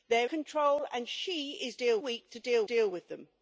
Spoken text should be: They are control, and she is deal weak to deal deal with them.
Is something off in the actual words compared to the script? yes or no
no